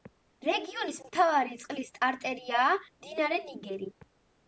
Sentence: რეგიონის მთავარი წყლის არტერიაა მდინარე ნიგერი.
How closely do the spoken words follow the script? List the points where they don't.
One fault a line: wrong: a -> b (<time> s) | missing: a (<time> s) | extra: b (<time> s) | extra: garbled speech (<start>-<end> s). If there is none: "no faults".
no faults